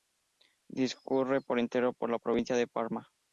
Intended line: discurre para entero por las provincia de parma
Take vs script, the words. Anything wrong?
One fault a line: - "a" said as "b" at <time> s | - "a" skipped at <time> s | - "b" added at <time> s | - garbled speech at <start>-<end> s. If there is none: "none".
- "para" said as "por" at 1.4 s
- "las" said as "la" at 2.1 s